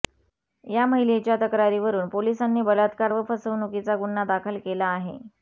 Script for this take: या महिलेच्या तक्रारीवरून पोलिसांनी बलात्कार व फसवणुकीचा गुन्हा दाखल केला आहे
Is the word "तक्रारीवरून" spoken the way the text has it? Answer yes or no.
yes